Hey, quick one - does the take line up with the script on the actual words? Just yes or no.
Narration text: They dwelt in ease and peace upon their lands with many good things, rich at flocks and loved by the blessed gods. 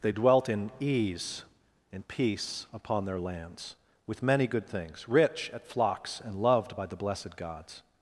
yes